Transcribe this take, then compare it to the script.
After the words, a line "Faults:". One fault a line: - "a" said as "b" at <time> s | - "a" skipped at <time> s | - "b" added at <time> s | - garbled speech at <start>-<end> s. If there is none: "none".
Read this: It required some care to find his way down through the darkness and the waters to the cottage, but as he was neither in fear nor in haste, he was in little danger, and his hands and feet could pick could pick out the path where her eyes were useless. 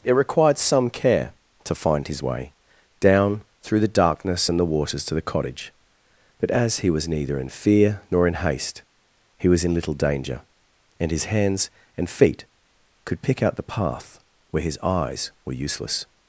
It required some care to find his way down through the darkness and the waters to the cottage, but as he was neither in fear nor in haste, he was in little danger, and his hands and feet could pick out the path where his eyes were useless.
Faults:
- "could pick" skipped at 13.4 s
- "her" said as "his" at 14.6 s